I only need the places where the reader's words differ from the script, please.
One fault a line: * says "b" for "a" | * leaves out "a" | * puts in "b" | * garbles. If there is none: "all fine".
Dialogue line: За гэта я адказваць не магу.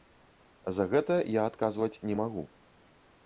all fine